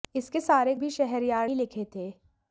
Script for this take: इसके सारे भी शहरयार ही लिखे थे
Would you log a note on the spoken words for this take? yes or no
no